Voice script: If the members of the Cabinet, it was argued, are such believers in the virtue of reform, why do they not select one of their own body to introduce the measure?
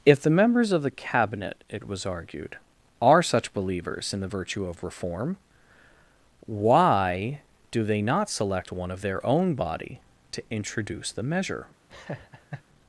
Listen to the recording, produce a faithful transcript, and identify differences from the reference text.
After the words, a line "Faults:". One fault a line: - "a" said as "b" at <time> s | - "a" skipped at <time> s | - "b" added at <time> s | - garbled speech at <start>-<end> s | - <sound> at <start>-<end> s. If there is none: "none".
If the members of the Cabinet, it was argued, are such believers in the virtue of reform, why do they not select one of their own body to introduce the measure?
Faults:
- laugh at 11.9-12.6 s